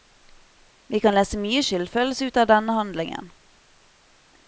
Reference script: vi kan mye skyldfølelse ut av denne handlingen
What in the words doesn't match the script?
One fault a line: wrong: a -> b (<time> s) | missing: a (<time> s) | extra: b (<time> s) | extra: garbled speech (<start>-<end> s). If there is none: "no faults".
extra: lese (1.1 s)